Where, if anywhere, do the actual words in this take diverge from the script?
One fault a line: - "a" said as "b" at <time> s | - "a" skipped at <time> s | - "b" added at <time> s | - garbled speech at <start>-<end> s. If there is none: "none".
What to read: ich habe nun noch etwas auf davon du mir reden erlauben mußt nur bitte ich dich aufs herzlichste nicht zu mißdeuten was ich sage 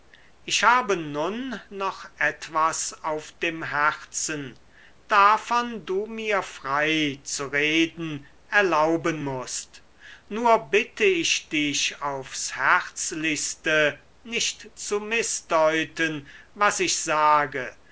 - "dem herzen" added at 3.3 s
- "frei zu" added at 6.4 s